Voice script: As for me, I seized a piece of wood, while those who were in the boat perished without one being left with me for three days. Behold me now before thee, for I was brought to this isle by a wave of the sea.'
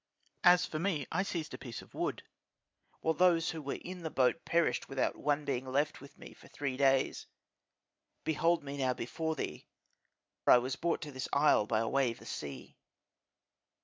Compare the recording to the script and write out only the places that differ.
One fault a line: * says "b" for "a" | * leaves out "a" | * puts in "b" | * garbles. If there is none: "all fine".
* leaves out "for"
* leaves out "of"